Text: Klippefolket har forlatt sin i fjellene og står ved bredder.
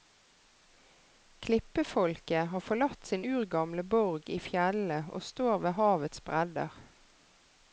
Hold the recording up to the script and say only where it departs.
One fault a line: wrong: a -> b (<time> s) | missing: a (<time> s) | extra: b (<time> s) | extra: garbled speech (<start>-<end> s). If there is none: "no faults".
extra: urgamle borg (3.2 s)
extra: havets (5.8 s)